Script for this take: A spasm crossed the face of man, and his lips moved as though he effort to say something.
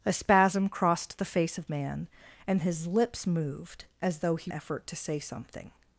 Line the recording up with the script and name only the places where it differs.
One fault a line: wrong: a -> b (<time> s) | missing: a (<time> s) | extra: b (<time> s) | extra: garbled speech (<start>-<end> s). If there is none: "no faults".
no faults